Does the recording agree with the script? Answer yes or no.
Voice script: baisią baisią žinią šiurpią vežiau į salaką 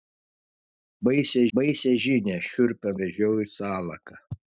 yes